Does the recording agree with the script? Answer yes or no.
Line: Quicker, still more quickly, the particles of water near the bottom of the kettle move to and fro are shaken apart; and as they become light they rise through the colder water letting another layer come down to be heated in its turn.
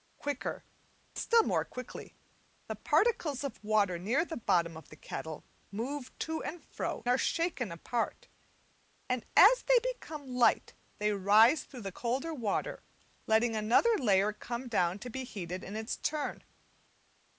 yes